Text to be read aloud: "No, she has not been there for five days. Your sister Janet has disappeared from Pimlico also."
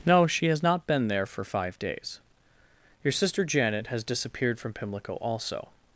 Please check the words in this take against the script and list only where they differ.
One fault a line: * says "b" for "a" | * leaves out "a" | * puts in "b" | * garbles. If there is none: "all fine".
all fine